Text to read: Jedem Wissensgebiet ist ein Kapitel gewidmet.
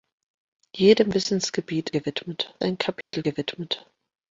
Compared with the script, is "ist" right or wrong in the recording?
wrong